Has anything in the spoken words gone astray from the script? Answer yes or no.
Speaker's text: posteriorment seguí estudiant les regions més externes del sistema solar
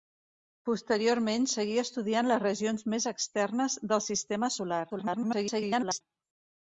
yes